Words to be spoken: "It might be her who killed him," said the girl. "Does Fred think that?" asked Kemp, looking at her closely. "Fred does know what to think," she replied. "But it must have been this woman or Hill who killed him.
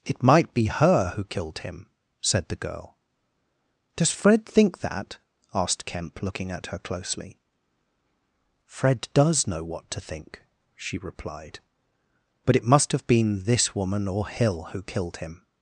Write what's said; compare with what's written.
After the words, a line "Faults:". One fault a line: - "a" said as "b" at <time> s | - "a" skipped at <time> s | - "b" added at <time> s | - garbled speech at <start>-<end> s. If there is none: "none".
"It might be her who killed him," said the girl. "Does Fred think that?" asked Kemp, looking at her closely. "Fred does know what to think," she replied. "But it must have been this woman or Hill who killed him.
Faults:
none